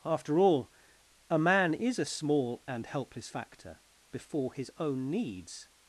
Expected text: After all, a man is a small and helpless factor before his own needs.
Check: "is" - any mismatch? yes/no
no